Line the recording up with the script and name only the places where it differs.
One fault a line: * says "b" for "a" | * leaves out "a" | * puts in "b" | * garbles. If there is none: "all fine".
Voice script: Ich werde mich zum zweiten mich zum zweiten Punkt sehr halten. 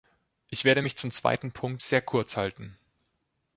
* leaves out "mich zum zweiten"
* puts in "kurz"